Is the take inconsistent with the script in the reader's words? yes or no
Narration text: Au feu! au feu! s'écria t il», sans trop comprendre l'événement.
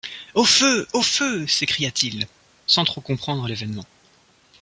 no